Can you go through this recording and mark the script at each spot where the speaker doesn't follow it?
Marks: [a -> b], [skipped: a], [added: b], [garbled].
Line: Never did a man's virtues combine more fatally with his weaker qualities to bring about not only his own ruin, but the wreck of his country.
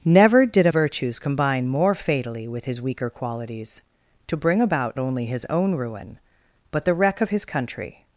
Never did a [skipped: man's] virtues combine more fatally with his weaker qualities to bring about [skipped: not] only his own ruin, but the wreck of his country.